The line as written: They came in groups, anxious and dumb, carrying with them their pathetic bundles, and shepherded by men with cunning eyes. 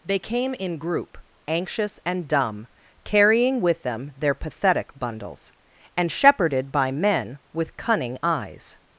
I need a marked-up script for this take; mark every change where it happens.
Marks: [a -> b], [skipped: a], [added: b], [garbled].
They came in [groups, -> group] anxious and dumb, carrying with them their pathetic bundles, and shepherded by men with cunning eyes.